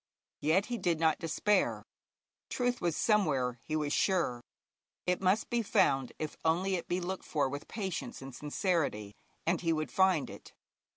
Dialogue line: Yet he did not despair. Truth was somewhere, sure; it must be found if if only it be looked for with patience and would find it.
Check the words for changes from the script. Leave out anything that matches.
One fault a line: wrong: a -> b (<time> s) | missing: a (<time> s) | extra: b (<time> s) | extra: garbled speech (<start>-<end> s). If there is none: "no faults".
extra: he was (3.7 s)
missing: if (6.4 s)
extra: sincerity and he (8.3 s)